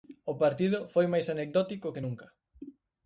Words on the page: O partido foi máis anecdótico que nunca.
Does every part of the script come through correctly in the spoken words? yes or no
yes